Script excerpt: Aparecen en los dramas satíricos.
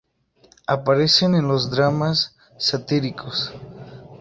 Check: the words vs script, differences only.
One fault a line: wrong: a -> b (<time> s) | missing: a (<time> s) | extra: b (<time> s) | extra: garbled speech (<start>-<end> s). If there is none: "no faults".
no faults